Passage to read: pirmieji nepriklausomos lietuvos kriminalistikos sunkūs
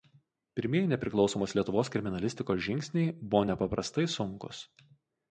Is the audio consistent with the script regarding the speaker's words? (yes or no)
no